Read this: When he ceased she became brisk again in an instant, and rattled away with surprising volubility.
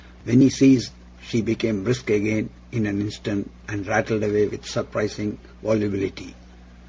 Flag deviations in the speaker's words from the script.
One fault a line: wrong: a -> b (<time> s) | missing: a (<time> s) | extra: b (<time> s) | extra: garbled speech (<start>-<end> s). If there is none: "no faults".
no faults